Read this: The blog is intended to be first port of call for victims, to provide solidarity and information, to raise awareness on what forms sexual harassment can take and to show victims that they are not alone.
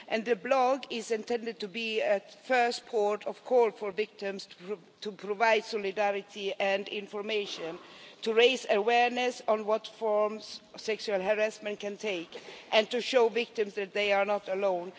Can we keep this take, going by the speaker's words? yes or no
no